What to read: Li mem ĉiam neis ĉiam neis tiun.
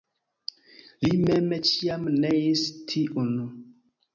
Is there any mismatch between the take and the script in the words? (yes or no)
yes